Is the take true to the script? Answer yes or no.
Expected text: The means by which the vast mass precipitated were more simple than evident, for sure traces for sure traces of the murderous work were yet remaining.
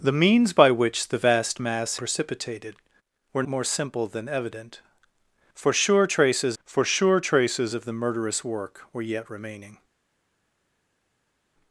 yes